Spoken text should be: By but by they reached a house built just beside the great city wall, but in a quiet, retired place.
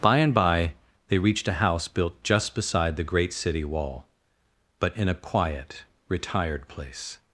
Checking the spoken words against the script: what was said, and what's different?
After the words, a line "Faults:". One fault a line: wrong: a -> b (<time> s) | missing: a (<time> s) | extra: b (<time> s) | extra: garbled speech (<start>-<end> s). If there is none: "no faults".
By and by they reached a house built just beside the great city wall, but in a quiet, retired place.
Faults:
wrong: but -> and (0.2 s)